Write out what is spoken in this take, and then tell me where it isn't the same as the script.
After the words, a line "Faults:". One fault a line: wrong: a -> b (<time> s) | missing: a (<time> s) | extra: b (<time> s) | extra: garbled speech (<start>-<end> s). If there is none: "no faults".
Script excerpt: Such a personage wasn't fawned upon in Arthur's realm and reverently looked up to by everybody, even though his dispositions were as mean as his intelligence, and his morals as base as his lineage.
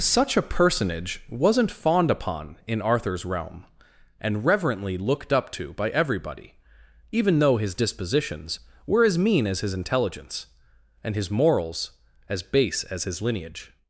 Such a personage wasn't fawned upon in Arthur's realm and reverently looked up to by everybody, even though his dispositions were as mean as his intelligence, and his morals as base as his lineage.
Faults:
no faults